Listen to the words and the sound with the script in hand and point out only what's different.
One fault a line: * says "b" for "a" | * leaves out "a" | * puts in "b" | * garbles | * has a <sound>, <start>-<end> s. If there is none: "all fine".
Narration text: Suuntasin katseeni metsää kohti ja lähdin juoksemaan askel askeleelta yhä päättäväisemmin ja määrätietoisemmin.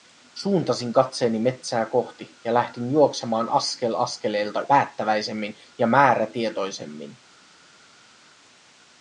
* leaves out "yhä"